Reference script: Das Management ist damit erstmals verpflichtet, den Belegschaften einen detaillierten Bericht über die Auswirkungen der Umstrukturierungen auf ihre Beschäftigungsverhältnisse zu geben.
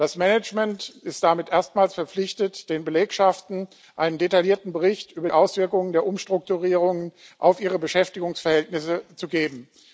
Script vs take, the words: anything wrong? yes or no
yes